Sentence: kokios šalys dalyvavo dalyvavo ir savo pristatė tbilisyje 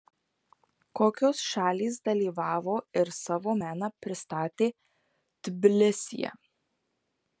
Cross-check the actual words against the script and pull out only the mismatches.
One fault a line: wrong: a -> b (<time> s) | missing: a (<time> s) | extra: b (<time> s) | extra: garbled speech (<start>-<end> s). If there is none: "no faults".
missing: dalyvavo (2.8 s)
extra: meną (3.6 s)